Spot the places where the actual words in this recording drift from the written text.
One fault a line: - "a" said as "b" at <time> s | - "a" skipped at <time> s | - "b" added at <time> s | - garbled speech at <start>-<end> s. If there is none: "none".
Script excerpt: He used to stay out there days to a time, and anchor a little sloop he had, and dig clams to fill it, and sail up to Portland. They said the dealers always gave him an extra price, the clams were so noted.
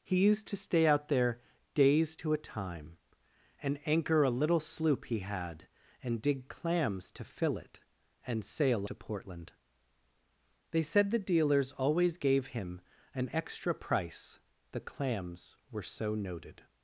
- "up" skipped at 8.9 s